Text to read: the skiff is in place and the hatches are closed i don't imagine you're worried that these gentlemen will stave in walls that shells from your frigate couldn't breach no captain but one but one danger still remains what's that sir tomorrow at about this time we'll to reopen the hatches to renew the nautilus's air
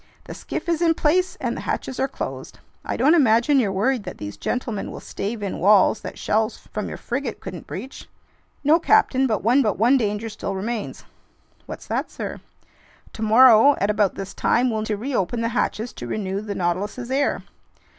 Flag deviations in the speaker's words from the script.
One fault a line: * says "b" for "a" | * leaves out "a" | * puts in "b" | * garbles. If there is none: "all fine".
all fine